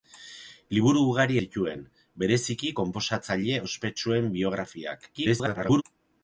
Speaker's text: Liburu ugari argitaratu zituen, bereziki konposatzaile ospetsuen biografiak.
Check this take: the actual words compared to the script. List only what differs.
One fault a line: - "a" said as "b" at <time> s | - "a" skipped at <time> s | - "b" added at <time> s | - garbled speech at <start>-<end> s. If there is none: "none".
- "argitaratu" skipped at 1.4 s
- garbled speech at 5.1-5.8 s